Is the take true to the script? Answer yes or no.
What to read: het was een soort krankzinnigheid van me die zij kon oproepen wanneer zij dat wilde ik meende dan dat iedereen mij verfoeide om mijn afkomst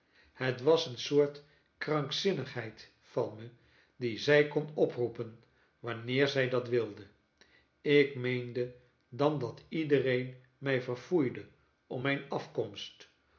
yes